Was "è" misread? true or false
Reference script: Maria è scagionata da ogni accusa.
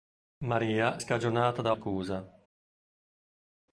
true